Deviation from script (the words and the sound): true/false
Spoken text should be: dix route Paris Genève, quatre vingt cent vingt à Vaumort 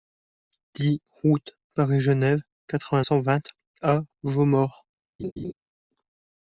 true